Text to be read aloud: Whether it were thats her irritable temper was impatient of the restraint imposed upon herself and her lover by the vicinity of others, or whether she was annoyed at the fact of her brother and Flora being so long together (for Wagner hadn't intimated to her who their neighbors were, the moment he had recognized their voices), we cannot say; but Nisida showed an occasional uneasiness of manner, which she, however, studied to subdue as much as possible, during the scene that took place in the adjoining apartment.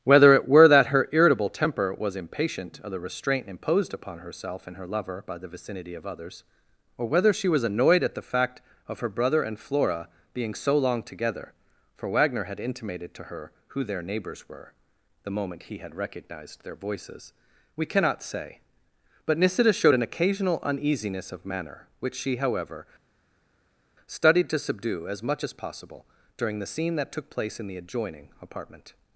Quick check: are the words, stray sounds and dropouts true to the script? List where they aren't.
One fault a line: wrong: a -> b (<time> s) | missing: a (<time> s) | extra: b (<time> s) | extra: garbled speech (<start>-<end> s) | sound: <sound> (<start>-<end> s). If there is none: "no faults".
wrong: thats -> that (0.7 s)
wrong: hadn't -> had (12.4 s)